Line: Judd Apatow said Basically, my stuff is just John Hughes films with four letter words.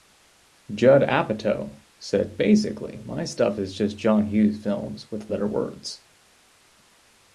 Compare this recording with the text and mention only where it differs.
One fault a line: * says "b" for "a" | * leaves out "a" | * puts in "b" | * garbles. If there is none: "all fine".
* leaves out "four"